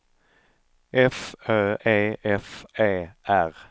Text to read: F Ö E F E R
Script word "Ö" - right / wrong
right